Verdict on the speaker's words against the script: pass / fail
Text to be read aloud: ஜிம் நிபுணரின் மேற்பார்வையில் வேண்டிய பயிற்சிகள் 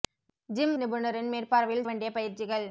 pass